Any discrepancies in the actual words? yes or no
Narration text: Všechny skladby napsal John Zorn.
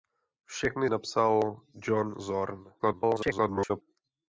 yes